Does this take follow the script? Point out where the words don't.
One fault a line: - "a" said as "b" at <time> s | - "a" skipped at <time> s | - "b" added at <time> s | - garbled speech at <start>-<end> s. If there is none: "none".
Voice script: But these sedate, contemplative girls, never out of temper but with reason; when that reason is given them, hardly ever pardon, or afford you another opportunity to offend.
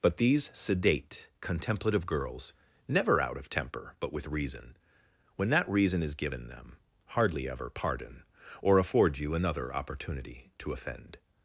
none